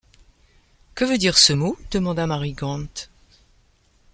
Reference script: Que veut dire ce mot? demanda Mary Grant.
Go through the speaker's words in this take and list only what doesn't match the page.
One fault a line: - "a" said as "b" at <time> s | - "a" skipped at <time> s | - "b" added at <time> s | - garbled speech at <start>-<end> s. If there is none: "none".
none